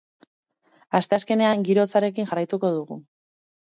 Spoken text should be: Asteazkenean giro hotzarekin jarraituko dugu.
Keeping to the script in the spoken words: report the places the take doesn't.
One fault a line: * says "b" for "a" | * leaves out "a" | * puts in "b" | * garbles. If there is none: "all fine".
all fine